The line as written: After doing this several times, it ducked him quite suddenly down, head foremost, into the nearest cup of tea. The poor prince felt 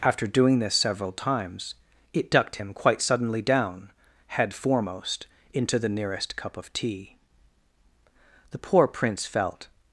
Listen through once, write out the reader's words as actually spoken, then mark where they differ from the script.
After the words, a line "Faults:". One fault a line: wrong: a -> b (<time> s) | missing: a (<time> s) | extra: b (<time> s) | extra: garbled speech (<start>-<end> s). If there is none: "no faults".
After doing this several times, it ducked him quite suddenly down, head foremost, into the nearest cup of tea. The poor prince felt
Faults:
no faults